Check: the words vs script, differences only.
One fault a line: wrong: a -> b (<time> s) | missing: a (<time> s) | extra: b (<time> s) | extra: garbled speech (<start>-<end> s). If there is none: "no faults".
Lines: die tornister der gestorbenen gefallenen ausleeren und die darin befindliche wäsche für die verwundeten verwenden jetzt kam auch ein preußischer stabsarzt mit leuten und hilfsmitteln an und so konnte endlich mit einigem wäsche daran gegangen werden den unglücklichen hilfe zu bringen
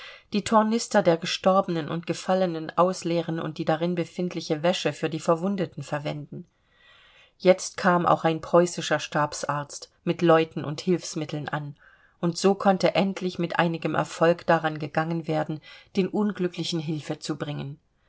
extra: und (1.9 s)
wrong: wäsche -> erfolg (13.9 s)